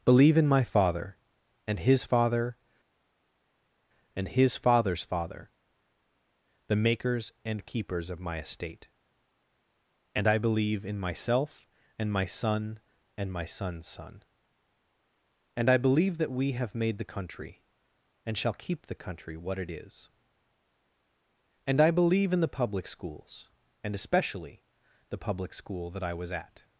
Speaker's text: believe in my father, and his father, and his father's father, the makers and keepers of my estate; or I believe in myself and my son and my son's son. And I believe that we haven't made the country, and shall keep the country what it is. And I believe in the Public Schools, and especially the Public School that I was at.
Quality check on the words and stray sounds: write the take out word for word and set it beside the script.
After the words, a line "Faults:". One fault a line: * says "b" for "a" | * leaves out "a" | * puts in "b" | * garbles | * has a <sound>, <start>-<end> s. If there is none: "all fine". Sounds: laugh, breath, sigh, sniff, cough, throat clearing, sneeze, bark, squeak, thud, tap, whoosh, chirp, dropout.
believe in my father, and his father, and his father's father, the makers and keepers of my estate; and I believe in myself and my son and my son's son. And I believe that we have made the country, and shall keep the country what it is. And I believe in the Public Schools, and especially the Public School that I was at.
Faults:
* says "and" for "or"
* says "have" for "haven't"